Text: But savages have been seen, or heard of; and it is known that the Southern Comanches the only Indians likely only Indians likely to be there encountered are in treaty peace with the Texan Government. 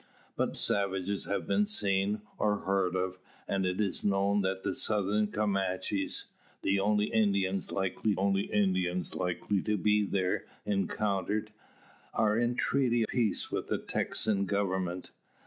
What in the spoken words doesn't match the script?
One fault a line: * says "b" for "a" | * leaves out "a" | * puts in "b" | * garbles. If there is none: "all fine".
all fine